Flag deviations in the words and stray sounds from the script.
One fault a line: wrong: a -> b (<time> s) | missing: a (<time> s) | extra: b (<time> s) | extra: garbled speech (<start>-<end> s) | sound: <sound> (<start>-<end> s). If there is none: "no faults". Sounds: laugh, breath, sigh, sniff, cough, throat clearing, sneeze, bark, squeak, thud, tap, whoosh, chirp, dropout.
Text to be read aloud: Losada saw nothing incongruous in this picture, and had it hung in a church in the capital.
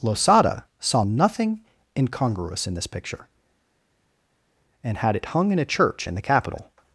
no faults